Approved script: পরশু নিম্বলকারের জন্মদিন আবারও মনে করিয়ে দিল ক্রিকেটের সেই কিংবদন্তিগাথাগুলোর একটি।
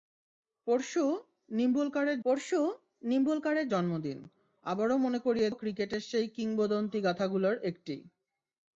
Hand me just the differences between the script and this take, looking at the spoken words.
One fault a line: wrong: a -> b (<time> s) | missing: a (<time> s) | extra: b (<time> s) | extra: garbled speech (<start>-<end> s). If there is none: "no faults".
extra: পরশু নিম্বলকারের (2.3 s)
missing: দিল (5.5 s)